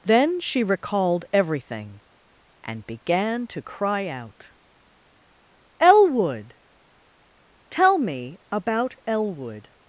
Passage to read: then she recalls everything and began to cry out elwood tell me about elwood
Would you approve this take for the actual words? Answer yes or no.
no